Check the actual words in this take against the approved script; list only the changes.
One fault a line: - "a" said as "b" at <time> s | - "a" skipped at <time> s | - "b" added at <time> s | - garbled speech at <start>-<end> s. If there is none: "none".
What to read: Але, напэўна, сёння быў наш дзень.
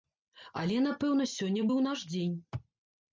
none